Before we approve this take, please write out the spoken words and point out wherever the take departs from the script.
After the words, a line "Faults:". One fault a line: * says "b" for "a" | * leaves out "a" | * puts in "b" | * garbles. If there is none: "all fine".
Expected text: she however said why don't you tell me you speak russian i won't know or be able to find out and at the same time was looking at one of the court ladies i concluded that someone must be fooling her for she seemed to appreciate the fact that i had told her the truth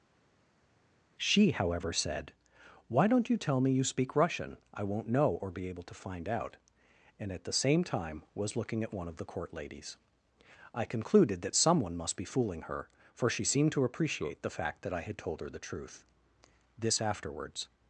she however said why don't you tell me you speak russian i won't know or be able to find out and at the same time was looking at one of the court ladies i concluded that someone must be fooling her for she seemed to appreciate the fact that i had told her the truth this afterwards
Faults:
* puts in "this afterwards"